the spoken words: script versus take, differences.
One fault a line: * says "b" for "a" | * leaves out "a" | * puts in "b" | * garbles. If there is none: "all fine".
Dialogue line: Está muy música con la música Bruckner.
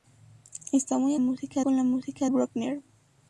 all fine